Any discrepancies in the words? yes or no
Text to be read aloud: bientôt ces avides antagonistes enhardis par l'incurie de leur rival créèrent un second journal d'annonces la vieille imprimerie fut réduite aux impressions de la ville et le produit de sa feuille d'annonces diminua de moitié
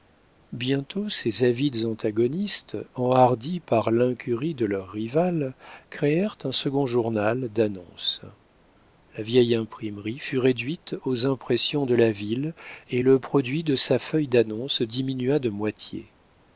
no